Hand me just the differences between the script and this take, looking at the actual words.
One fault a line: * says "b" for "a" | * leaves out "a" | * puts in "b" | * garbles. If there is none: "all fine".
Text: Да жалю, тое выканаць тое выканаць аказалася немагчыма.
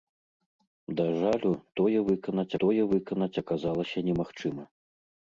all fine